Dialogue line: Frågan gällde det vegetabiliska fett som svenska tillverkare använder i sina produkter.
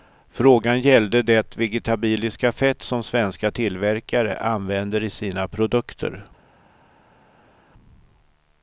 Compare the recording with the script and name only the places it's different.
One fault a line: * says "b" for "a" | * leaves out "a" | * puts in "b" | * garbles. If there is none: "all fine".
all fine